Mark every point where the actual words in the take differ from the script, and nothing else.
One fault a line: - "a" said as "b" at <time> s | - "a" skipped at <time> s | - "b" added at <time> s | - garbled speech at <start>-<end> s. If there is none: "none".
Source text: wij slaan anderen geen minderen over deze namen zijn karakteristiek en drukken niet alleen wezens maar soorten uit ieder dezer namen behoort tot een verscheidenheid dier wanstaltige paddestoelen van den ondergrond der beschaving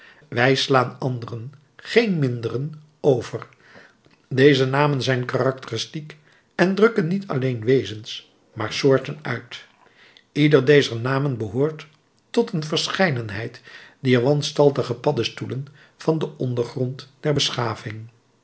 none